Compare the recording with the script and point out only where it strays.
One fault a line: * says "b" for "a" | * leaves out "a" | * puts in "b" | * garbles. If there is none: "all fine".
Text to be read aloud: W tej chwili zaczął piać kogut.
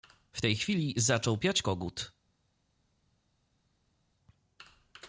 all fine